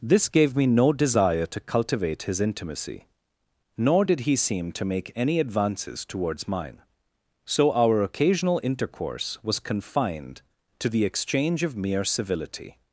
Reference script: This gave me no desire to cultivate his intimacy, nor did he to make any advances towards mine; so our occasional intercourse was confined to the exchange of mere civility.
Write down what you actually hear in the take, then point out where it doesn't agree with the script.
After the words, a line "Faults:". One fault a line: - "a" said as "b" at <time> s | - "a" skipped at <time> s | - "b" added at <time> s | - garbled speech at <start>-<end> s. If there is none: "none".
This gave me no desire to cultivate his intimacy, nor did he seem to make any advances towards mine; so our occasional intercourse was confined to the exchange of mere civility.
Faults:
- "seem" added at 4.3 s